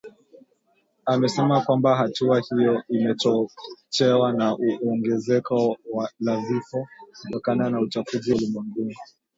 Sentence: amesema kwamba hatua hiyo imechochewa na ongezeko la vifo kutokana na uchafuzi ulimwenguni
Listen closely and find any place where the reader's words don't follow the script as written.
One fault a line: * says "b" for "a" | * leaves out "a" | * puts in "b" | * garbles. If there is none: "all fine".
all fine